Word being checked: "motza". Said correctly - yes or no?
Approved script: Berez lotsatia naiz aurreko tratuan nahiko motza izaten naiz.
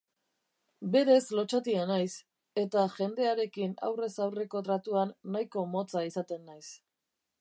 yes